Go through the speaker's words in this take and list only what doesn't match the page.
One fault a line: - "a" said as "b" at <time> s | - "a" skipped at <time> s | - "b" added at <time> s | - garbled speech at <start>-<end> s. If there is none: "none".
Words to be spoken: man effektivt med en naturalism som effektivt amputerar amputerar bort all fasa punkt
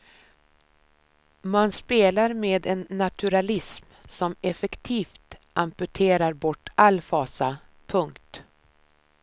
- "effektivt" said as "spelar" at 1.7 s
- "amputerar" skipped at 6.3 s